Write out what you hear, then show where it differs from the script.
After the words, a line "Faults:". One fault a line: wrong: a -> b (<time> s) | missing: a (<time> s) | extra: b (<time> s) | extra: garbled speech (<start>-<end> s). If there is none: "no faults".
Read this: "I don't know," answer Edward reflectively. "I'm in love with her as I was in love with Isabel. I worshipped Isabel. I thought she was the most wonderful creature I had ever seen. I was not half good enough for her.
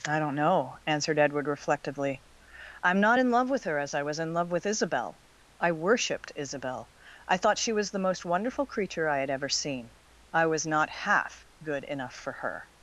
"I don't know," answered Edward reflectively. "I'm not in love with her as I was in love with Isabel. I worshipped Isabel. I thought she was the most wonderful creature I had ever seen. I was not half good enough for her.
Faults:
wrong: answer -> answered (0.9 s)
extra: not (3.0 s)